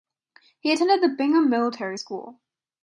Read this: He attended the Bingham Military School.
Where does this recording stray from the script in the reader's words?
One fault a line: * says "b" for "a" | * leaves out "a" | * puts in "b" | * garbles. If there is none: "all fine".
all fine